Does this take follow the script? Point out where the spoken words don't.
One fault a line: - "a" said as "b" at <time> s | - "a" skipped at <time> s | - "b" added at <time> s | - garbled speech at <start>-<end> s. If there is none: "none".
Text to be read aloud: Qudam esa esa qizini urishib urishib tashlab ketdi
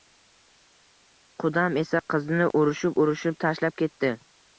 - "esa" skipped at 2.0 s